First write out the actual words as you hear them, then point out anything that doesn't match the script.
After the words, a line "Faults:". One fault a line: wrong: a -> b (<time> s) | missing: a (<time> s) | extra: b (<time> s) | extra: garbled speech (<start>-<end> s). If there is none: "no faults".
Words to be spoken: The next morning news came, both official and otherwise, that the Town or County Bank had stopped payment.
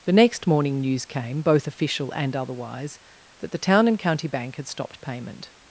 The next morning news came, both official and otherwise, that the Town and County Bank had stopped payment.
Faults:
wrong: or -> and (3.9 s)